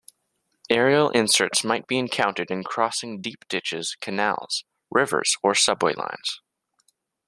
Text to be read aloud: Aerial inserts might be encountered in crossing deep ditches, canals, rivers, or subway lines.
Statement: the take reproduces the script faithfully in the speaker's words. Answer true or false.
true